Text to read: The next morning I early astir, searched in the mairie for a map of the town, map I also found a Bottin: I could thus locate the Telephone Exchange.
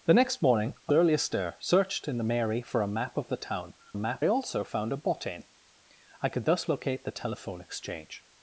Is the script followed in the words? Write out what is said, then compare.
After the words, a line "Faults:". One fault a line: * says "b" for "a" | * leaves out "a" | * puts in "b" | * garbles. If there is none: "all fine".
The next morning I early astir, searched in the mairie for a map of the town, map I also found a Bottin: I could thus locate the Telephone Exchange.
Faults:
all fine